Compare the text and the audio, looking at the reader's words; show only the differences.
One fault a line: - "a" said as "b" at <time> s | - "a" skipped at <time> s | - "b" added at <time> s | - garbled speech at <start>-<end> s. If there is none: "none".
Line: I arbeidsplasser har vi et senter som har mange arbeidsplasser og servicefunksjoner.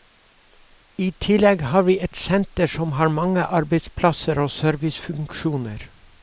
- "arbeidsplasser" said as "tillegg" at 1.2 s